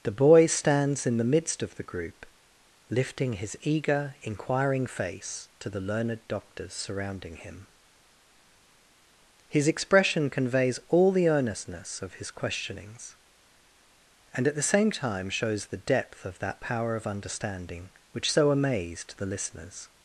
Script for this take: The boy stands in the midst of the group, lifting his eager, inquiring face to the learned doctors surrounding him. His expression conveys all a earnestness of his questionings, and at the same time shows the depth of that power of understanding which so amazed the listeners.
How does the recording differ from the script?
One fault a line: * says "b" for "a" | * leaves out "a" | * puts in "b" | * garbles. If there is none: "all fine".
* says "the" for "a"